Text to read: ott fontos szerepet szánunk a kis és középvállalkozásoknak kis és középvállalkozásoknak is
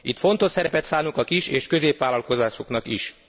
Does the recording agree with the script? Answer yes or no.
no